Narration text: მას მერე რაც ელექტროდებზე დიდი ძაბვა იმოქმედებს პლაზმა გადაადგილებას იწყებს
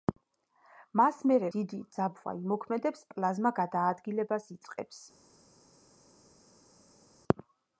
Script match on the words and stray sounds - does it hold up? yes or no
no